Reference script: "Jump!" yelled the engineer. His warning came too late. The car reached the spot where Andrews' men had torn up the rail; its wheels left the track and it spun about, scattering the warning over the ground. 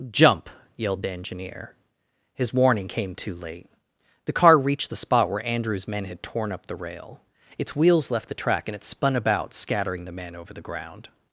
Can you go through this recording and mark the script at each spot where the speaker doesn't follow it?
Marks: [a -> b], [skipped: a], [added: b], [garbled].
"Jump!" yelled the engineer. His warning came too late. The car reached the spot where Andrews' men had torn up the rail; its wheels left the track and it spun about, scattering the [warning -> men] over the ground.